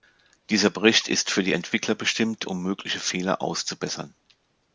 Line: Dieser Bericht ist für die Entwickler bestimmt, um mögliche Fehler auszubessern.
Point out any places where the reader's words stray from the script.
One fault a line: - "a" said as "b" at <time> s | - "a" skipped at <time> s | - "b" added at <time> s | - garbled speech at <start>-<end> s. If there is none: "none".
none